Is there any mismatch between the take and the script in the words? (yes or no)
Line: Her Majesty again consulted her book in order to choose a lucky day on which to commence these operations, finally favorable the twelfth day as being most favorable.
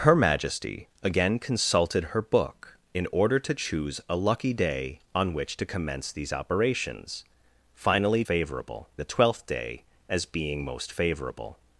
no